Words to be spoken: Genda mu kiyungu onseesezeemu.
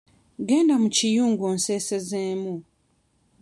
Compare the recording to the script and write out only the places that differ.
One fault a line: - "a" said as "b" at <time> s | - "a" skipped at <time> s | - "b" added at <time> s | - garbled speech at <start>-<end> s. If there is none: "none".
none